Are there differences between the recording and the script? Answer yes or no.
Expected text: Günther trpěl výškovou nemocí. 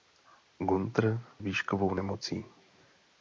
yes